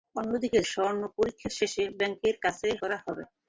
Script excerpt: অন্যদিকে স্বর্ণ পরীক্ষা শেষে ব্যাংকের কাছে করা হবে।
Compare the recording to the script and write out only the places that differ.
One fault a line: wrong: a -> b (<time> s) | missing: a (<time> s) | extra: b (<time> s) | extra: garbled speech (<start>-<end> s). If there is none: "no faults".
no faults